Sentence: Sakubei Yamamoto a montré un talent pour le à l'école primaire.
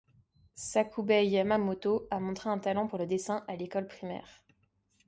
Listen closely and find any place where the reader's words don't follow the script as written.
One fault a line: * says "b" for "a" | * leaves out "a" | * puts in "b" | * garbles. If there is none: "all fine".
* puts in "dessin"